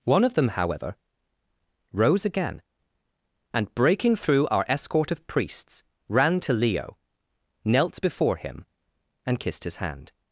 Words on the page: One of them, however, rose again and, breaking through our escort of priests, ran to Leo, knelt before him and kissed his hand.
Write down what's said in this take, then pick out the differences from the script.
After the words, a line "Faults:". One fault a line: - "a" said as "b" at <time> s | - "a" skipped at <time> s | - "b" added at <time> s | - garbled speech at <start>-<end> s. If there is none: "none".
One of them, however, rose again and, breaking through our escort of priests, ran to Leo, knelt before him and kissed his hand.
Faults:
none